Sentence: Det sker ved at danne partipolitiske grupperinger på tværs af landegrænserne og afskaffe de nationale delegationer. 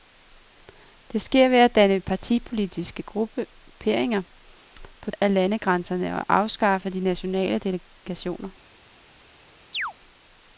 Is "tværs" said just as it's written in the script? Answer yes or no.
no